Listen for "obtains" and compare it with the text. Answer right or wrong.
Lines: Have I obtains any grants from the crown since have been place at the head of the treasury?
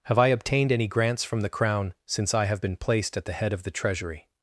wrong